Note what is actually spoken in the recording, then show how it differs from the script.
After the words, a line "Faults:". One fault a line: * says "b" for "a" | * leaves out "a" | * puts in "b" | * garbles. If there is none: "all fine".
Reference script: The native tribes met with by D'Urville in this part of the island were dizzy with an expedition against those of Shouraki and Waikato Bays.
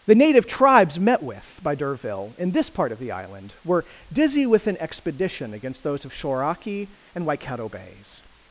The native tribes met with by D'Urville in this part of the island were dizzy with an expedition against those of Shouraki and Waikato Bays.
Faults:
all fine